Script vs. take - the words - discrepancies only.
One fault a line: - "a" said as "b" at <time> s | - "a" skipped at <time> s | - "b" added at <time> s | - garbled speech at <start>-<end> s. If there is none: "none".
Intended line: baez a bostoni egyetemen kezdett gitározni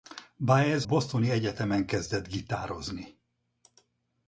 - "a" skipped at 0.8 s